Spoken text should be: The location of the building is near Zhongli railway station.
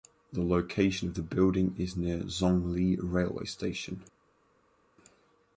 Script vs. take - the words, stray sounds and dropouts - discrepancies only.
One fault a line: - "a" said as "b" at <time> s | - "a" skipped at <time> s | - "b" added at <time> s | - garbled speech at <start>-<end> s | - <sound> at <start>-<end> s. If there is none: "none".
none